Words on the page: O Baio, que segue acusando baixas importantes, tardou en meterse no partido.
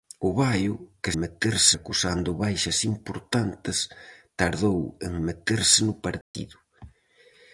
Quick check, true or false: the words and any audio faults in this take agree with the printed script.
false